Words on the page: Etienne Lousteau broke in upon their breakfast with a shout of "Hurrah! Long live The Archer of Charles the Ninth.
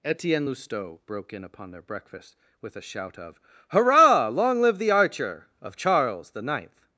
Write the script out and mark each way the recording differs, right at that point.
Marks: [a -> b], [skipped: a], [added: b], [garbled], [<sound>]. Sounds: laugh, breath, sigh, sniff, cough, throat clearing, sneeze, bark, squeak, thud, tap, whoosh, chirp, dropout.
Etienne Lousteau broke in upon their breakfast with a shout of "Hurrah! Long live The Archer of Charles the Ninth.